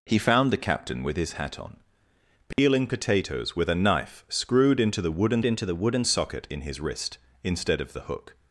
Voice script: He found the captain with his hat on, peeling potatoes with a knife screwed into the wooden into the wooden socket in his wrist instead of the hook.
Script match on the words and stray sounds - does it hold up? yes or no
no